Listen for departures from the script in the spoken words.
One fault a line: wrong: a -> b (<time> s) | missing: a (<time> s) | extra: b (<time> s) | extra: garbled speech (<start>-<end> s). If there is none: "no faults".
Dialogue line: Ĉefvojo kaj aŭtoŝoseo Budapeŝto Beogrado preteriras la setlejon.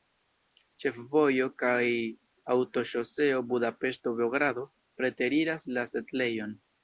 no faults